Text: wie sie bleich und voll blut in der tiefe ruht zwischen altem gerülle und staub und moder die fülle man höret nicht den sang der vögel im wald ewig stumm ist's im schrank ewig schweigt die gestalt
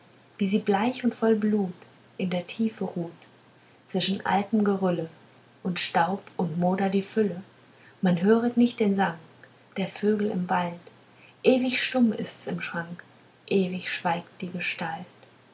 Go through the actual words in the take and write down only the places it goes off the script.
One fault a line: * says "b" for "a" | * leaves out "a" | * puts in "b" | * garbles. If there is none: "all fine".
all fine